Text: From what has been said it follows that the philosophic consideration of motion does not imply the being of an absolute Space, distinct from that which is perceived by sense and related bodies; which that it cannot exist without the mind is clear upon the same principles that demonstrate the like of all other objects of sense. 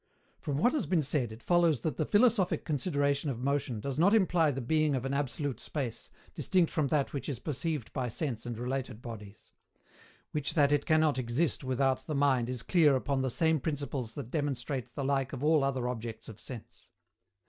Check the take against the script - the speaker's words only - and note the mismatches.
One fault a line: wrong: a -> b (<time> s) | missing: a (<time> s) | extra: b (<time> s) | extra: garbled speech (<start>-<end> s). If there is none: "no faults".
no faults